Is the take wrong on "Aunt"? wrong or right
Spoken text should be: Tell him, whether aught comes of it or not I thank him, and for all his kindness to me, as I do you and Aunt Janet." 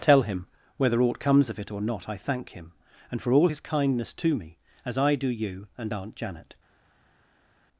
right